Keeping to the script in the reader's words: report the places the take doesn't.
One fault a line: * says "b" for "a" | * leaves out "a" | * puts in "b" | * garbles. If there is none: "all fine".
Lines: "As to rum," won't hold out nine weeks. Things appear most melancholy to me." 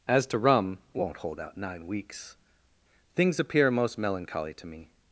all fine